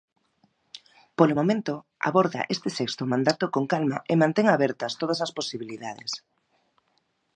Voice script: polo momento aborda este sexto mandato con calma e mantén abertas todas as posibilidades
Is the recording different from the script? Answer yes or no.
no